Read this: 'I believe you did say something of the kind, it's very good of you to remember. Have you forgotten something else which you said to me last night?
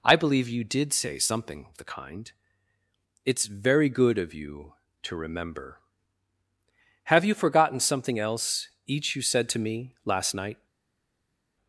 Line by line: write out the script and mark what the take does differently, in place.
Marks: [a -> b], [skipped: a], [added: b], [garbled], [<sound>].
'I believe you did say something of the kind, it's very good of you to remember. Have you forgotten something else [which -> each] you said to me last night?